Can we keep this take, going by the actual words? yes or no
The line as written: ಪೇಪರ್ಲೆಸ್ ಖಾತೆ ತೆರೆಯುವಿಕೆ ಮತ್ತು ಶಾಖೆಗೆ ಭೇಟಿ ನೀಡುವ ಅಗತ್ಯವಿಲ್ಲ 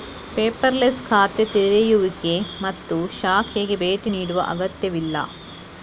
yes